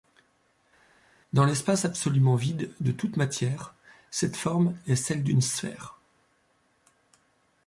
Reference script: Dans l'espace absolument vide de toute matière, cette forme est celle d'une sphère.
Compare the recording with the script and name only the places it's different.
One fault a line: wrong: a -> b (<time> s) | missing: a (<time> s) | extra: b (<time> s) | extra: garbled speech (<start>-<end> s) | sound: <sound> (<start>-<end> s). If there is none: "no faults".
no faults